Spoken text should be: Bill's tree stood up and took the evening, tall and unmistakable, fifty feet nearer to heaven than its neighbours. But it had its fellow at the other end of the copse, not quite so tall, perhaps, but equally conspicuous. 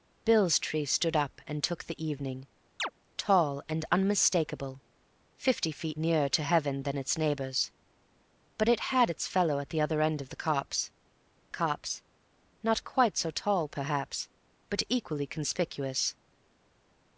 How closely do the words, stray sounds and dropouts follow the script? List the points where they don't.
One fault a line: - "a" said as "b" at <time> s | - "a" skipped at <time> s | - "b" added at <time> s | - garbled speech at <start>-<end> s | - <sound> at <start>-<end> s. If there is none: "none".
- chirp at 2.8-2.9 s
- "copse" added at 11.5 s